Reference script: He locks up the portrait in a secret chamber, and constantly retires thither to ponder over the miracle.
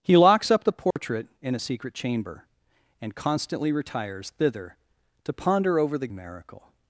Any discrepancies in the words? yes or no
no